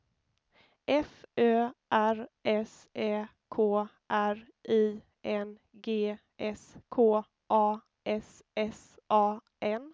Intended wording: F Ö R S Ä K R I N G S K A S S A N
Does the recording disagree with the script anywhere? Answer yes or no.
no